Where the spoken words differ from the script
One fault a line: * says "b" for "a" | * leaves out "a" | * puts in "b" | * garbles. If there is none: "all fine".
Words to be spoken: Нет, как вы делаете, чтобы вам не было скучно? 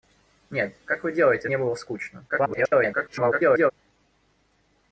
* leaves out "чтобы вам"
* garbles